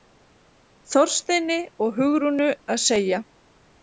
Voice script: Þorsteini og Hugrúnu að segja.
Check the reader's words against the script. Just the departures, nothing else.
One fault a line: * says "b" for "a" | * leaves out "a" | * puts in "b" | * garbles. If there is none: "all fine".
all fine